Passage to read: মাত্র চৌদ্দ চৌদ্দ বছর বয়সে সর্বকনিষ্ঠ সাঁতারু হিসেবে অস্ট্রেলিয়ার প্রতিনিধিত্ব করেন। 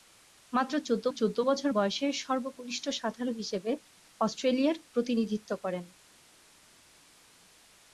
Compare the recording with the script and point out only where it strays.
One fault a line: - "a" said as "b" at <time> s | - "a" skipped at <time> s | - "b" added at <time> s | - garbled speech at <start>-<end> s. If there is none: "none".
none